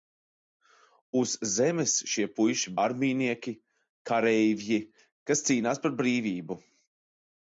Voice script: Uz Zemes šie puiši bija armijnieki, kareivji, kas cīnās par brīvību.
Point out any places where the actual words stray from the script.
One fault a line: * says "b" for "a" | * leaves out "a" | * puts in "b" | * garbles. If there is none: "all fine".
* leaves out "bija"